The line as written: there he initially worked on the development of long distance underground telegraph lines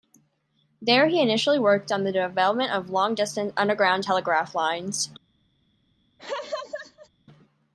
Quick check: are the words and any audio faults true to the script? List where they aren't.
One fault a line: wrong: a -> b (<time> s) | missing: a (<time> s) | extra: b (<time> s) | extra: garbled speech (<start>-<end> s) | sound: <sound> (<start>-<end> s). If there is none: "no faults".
sound: laugh (6.2-7.1 s)